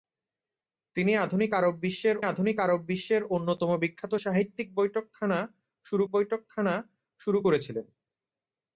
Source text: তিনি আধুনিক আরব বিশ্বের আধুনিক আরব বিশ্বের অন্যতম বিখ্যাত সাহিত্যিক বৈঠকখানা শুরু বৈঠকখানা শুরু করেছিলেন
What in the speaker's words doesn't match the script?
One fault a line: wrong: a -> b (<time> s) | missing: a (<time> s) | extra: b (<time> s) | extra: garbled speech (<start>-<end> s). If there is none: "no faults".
no faults